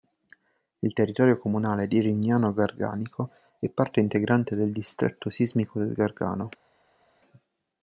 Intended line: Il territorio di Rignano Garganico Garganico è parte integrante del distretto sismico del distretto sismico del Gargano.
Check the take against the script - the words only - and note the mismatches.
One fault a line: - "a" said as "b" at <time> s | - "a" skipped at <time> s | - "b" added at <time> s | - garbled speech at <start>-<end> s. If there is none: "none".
- "comunale" added at 1.4 s
- "Garganico" skipped at 3.3 s
- "distretto sismico del" skipped at 5.9 s